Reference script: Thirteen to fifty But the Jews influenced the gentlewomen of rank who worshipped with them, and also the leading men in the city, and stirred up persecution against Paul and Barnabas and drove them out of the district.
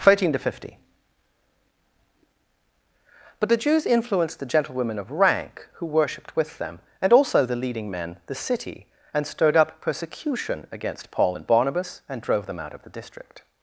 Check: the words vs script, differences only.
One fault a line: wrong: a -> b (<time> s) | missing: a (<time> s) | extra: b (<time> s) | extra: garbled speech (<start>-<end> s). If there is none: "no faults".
missing: in (8.2 s)